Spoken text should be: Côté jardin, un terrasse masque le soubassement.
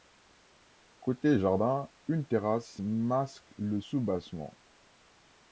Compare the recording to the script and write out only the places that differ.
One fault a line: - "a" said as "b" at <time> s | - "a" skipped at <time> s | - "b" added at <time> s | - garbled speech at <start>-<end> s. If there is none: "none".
- "un" said as "une" at 2.1 s